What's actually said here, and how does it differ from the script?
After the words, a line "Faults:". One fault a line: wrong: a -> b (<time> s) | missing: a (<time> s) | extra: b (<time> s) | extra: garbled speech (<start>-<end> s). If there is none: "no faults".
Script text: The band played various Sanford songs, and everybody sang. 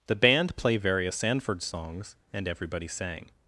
The band play various Sanford songs, and everybody sang.
Faults:
wrong: played -> play (0.6 s)